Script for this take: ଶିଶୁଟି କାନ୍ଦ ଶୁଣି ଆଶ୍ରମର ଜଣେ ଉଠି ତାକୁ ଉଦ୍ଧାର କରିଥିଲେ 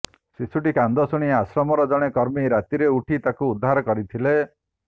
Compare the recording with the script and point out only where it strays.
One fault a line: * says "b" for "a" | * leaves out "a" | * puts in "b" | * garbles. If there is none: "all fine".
* puts in "କର୍ମୀ ରାତିରେ"